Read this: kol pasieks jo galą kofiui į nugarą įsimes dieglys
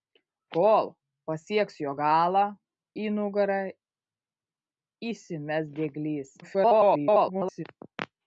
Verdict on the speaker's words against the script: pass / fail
fail